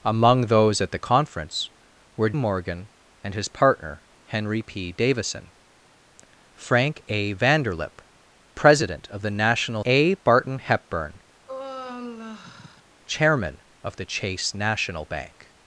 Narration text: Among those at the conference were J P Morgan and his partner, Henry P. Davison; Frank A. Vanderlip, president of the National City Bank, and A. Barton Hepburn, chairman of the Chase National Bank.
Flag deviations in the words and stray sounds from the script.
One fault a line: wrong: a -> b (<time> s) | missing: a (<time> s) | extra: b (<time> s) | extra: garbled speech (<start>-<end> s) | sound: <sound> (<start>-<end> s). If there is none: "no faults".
missing: J P (2.3 s)
missing: City Bank and (9.8 s)
sound: sigh (11.5-12.8 s)